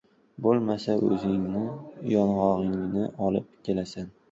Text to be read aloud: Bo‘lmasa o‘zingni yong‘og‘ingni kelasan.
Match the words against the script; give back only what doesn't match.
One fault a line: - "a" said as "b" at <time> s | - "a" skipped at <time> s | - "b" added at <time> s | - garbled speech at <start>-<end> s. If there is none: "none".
- "olib" added at 3.3 s